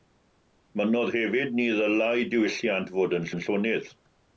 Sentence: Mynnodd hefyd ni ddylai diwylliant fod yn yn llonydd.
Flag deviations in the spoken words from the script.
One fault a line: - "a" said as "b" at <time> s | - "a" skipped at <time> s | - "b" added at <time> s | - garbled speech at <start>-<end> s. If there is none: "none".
none